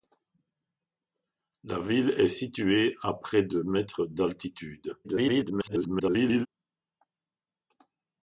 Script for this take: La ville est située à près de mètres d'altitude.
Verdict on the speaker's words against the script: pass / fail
fail